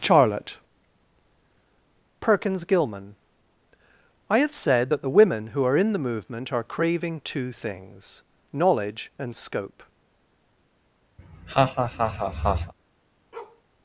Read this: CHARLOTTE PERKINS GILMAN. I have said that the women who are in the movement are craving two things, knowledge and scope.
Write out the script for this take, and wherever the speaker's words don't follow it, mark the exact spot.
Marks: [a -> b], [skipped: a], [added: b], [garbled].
CHARLOTTE PERKINS GILMAN. I have said that the women who are in the movement are craving two things, knowledge and scope.